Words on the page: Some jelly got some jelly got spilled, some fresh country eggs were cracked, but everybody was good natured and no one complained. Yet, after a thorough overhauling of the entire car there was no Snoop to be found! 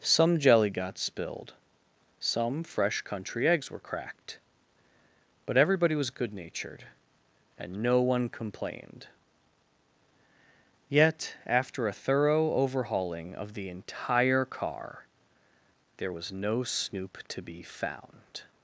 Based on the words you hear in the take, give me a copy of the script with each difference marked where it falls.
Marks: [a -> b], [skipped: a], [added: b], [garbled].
Some jelly got [skipped: some jelly got] spilled, some fresh country eggs were cracked, but everybody was good natured and no one complained. Yet, after a thorough overhauling of the entire car there was no Snoop to be found!